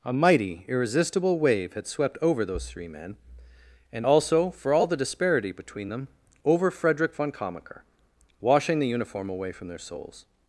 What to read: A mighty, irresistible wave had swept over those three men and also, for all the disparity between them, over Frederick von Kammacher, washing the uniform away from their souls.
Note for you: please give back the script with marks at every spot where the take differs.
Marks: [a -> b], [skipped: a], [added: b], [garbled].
A mighty, irresistible wave had swept over those three men and also, for all the disparity between them, over Frederick von Kammacher, washing the uniform away from their souls.